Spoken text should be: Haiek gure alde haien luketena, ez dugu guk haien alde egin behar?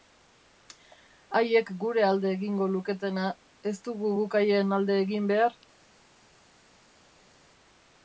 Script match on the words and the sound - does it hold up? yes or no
no